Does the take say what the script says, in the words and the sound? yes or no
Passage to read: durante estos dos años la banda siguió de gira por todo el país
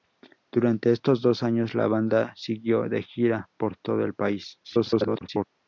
no